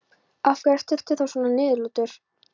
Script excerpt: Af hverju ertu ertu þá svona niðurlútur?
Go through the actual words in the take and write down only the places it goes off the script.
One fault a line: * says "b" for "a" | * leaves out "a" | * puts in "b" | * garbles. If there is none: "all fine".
all fine